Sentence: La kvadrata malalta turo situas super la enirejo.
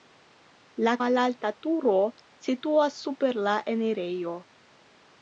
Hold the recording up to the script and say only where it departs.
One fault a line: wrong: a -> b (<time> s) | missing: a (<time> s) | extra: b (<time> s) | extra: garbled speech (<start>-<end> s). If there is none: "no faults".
missing: kvadrata (0.9 s)